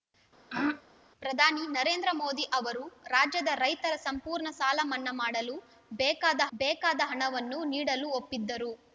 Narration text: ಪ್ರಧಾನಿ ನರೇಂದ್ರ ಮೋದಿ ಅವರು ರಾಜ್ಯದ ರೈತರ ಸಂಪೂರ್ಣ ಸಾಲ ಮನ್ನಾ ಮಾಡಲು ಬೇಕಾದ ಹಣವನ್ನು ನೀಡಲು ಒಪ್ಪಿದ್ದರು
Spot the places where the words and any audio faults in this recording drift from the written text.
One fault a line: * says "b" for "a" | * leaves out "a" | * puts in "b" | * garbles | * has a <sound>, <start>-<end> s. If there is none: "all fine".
* has a throat clearing, 0.5-0.8 s
* puts in "ಬೇಕಾದ"